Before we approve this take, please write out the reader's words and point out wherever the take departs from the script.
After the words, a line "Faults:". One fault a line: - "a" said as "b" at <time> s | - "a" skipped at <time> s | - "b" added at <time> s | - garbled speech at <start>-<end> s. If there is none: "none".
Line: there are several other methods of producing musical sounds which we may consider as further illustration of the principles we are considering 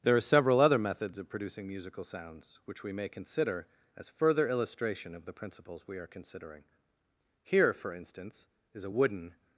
there are several other methods of producing musical sounds which we may consider as further illustration of the principles we are considering here for instance is a wooden
Faults:
- "here for instance is a wooden" added at 7.4 s